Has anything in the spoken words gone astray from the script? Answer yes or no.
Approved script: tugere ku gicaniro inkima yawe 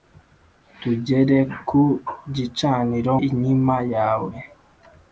no